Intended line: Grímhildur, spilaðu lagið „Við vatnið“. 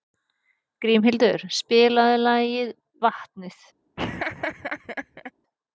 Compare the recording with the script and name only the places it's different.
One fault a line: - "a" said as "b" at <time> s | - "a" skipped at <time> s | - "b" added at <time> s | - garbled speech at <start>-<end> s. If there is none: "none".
- "Við" skipped at 2.8 s